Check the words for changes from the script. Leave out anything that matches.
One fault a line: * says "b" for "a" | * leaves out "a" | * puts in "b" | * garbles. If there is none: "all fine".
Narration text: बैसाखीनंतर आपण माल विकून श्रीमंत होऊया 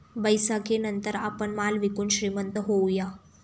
all fine